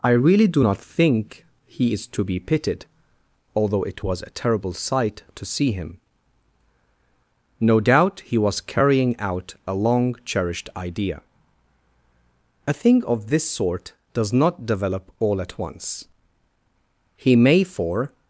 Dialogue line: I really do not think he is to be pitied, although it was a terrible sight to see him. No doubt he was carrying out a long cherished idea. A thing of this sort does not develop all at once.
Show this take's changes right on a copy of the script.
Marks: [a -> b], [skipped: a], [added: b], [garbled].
I really do not think he is to be pitied, although it was a terrible sight to see him. No doubt he was carrying out a long cherished idea. A thing of this sort does not develop all at once. [added: He may for]